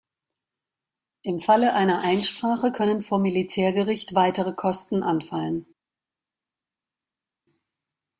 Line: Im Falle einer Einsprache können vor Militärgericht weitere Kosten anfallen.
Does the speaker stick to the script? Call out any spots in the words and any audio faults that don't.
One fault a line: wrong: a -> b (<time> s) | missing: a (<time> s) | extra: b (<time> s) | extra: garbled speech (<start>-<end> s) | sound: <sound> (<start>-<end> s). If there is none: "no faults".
no faults